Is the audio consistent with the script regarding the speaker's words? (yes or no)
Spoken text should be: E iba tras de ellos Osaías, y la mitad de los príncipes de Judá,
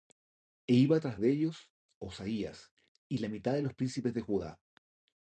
yes